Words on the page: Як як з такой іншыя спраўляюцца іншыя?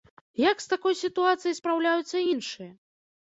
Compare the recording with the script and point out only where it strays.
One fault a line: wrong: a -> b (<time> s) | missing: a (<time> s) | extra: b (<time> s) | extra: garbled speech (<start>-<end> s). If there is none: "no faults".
missing: як (0.6 s)
wrong: іншыя -> сітуацыяй (1.0 s)